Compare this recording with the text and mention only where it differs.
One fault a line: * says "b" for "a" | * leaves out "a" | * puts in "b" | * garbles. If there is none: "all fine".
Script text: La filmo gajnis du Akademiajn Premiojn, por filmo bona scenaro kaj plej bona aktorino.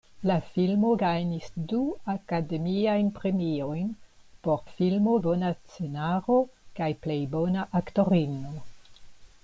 all fine